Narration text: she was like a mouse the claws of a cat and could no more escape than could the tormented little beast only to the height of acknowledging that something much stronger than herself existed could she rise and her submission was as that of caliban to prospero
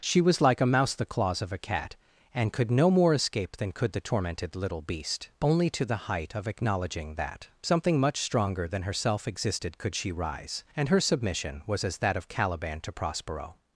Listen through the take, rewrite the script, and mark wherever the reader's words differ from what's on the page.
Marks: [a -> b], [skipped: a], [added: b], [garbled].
she was like a mouse the claws of a cat and could no more escape than could the tormented little beast only to the height of acknowledging that something much stronger than herself existed could she rise and her submission was as that of caliban to prospero